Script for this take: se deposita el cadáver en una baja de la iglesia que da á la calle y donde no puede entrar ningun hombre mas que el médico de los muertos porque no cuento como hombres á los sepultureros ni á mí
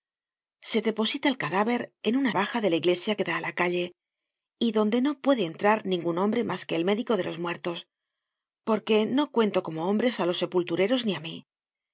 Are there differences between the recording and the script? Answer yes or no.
no